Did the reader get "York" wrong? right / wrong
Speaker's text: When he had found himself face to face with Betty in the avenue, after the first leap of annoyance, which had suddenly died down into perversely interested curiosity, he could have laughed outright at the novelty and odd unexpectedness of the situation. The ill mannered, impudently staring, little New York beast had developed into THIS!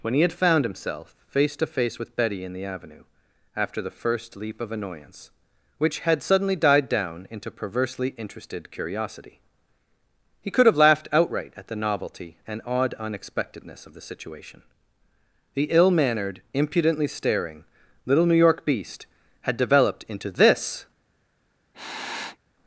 right